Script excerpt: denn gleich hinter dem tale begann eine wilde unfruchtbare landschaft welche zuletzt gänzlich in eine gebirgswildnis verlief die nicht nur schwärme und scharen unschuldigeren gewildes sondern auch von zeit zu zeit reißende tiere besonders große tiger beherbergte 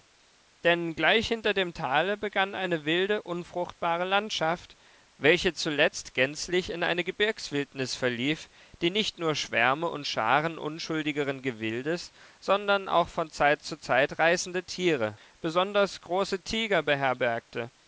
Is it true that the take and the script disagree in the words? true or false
false